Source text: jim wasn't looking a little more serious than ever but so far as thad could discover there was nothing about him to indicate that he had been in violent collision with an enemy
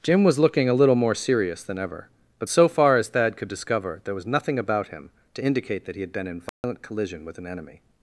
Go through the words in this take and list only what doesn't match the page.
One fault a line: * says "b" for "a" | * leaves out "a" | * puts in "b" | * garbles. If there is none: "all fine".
* says "was" for "wasn't"